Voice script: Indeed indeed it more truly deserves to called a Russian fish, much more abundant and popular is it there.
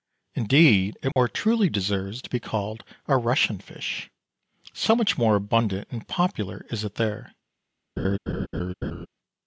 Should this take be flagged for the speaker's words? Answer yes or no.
yes